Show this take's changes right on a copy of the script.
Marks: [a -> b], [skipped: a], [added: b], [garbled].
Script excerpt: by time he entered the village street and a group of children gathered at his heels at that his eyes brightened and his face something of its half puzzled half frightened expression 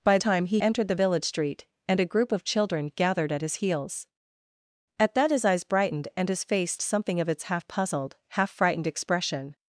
by time he entered the village street and a group of children gathered at his heels at that his eyes brightened and his face something of its half puzzled half frightened expression